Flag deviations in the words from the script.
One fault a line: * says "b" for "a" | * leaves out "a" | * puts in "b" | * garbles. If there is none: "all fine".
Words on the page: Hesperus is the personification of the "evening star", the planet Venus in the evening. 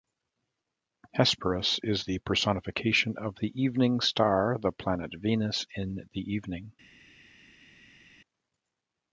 all fine